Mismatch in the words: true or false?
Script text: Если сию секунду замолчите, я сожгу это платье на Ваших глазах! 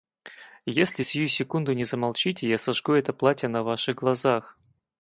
true